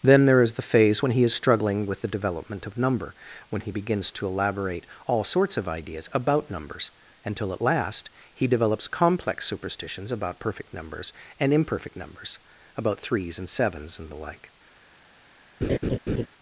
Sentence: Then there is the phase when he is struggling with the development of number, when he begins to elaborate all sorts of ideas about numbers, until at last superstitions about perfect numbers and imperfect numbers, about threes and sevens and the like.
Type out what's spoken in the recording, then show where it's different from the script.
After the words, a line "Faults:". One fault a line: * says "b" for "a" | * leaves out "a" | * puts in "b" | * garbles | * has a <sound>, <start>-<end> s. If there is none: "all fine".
Then there is the phase when he is struggling with the development of number, when he begins to elaborate all sorts of ideas about numbers, until at last he develops complex superstitions about perfect numbers and imperfect numbers, about threes and sevens and the like.
Faults:
* puts in "he develops complex"
* has a laugh, 15.6-16.3 s